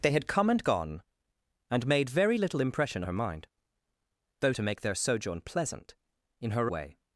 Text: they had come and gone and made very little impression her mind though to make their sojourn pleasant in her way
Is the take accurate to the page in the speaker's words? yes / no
yes